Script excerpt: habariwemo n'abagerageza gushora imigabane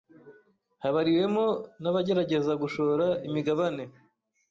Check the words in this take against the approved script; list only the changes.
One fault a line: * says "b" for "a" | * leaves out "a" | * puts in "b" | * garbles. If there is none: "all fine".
all fine